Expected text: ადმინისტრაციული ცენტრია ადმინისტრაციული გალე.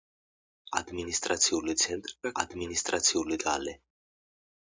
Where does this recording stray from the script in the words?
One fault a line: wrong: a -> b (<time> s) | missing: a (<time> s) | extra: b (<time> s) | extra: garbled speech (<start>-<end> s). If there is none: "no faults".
no faults